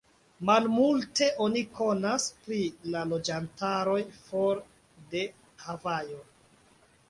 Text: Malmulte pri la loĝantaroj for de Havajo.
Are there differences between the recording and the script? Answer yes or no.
yes